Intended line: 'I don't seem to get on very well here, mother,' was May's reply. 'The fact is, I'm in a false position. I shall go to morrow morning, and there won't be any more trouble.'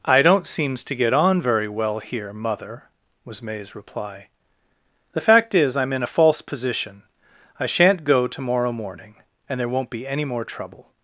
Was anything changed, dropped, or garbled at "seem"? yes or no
yes